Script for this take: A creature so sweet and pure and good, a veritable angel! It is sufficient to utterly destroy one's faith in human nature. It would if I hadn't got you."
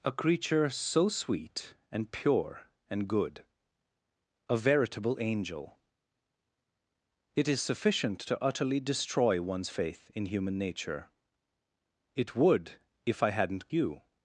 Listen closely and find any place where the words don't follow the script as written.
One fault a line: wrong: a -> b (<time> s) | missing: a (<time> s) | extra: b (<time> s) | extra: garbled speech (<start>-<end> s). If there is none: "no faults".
missing: got (13.7 s)